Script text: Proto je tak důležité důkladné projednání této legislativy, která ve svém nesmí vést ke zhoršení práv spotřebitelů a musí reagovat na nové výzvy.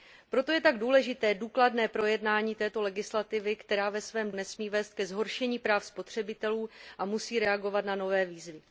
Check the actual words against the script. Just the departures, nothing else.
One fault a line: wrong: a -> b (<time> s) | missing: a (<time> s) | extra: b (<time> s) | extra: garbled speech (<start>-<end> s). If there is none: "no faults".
no faults